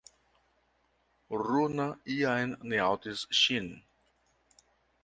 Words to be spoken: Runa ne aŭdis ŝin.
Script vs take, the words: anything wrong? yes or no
yes